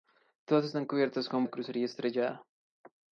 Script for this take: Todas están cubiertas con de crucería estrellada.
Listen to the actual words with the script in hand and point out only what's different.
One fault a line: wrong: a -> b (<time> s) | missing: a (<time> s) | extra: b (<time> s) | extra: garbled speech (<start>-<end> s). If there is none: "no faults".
no faults